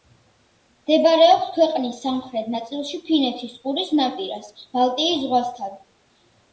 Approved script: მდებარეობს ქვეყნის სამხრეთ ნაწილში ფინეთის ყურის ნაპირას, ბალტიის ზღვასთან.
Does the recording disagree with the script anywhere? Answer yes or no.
no